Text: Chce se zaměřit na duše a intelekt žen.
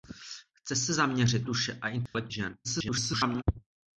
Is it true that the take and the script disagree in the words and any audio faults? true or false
true